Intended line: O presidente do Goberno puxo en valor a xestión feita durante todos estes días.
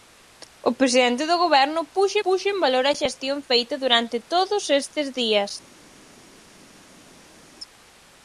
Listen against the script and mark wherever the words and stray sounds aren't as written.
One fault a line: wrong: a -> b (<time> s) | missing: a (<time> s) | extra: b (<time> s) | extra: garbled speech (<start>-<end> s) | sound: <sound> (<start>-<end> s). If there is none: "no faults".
extra: puxo (2.2 s)